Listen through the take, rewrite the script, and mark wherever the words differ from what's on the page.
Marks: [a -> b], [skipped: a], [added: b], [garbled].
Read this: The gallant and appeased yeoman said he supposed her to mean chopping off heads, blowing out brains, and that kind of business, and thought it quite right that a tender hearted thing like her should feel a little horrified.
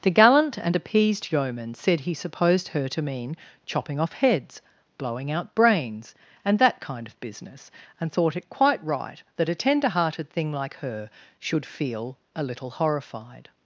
The gallant and appeased yeoman said he supposed her to mean chopping off heads, blowing out brains, and that kind of business, and thought it quite right that a tender hearted thing like her should feel a little horrified.